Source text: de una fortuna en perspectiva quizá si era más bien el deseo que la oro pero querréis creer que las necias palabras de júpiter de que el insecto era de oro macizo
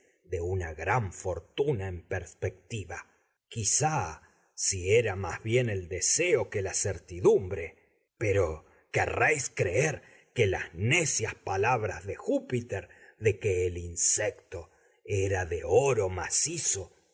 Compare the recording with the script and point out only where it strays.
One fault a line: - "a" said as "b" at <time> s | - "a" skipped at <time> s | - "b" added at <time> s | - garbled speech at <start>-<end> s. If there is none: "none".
- "gran" added at 0.7 s
- "oro" said as "certidumbre" at 6.7 s